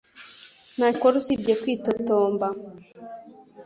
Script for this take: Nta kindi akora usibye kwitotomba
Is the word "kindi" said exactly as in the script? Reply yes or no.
no